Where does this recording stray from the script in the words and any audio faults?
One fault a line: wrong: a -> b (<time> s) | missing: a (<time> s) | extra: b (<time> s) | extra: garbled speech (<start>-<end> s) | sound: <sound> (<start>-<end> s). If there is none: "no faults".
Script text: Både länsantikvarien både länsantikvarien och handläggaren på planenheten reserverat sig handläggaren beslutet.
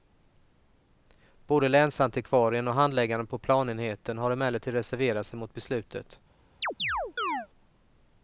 missing: både länsantikvarien (2.7 s)
extra: har emellertid (4.2 s)
wrong: handläggaren -> mot (5.4 s)
sound: chirp (6.6-7.5 s)